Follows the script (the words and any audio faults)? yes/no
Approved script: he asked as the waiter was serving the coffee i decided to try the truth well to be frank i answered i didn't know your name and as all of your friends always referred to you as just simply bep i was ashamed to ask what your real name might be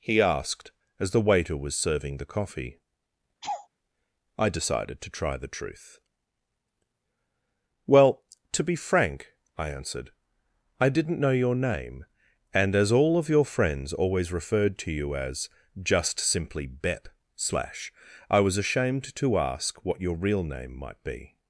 no